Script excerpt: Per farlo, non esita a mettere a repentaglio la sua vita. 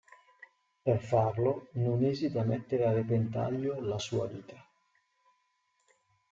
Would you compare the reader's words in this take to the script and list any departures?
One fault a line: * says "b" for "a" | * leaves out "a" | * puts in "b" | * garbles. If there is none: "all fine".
all fine